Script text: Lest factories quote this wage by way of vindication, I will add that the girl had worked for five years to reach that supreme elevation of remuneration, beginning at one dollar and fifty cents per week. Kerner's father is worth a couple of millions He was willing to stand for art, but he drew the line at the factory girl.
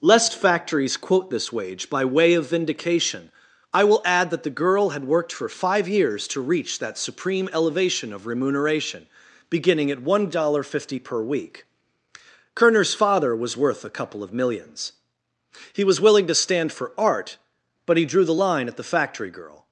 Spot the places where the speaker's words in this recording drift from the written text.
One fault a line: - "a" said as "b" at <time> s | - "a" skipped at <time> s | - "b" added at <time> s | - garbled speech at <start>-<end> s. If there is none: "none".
- "is" said as "was" at 13.4 s